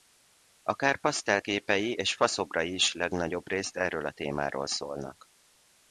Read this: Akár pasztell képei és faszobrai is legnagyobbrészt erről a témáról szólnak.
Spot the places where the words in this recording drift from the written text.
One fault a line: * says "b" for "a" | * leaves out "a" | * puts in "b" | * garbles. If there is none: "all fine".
all fine